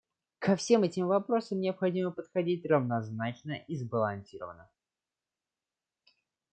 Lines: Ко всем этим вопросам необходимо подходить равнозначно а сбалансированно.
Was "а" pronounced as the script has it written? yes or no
no